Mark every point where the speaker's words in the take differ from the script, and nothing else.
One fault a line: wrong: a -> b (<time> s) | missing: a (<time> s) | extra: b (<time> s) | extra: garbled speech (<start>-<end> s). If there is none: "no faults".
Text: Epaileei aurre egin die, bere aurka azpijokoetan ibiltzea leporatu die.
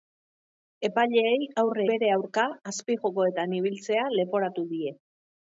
missing: egin die (1.9 s)